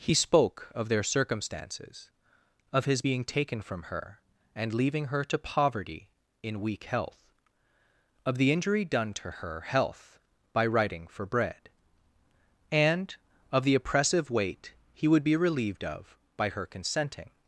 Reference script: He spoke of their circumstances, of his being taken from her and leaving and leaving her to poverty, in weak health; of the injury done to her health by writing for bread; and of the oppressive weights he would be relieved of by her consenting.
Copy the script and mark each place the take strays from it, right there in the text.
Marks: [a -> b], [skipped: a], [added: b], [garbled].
He spoke of their circumstances, of his being taken from her and leaving [skipped: and leaving] her to poverty, in weak health; of the injury done to her health by writing for bread; and of the oppressive [weights -> weight] he would be relieved of by her consenting.